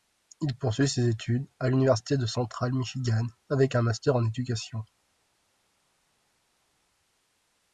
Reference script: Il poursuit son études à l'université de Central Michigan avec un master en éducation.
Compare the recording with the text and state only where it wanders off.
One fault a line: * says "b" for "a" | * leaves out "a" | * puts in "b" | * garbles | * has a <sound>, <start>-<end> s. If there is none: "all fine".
* says "ses" for "son"